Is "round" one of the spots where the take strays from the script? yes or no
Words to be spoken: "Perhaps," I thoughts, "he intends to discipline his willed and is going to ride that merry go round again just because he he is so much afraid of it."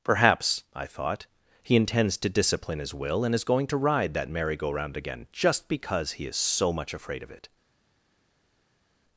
no